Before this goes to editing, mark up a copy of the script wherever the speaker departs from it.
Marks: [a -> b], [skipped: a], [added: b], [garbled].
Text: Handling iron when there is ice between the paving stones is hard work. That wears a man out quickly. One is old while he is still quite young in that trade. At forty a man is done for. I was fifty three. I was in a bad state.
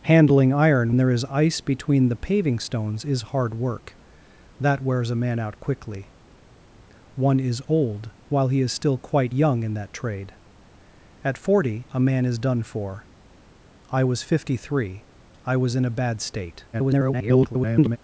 Handling iron [skipped: when] there is ice between the paving stones is hard work. That wears a man out quickly. One is old while he is still quite young in that trade. At forty a man is done for. I was fifty three. I was in a bad state. [garbled]